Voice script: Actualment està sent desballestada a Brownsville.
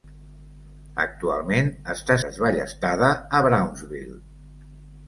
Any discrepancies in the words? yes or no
yes